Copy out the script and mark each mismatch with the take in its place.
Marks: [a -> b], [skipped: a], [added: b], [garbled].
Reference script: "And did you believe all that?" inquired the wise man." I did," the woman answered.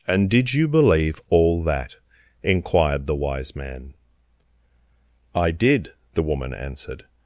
"And did you believe all that?" inquired the wise man." I did," the woman answered.